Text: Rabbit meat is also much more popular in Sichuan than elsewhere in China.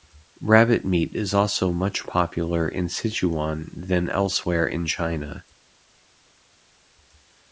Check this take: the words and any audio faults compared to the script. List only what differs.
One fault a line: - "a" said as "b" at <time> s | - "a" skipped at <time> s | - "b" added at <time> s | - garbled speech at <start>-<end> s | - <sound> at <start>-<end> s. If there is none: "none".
- "more" skipped at 2.1 s